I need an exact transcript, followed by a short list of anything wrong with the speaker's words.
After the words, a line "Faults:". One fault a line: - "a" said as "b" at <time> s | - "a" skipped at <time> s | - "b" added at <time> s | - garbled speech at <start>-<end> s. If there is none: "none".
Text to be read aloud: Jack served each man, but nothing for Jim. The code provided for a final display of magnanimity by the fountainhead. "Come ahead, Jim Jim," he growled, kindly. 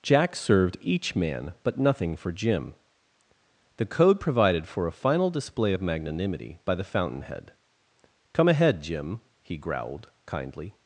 Jack served each man, but nothing for Jim. The code provided for a final display of magnanimity by the fountainhead. "Come ahead, Jim," he growled, kindly.
Faults:
- "Jim" skipped at 9.2 s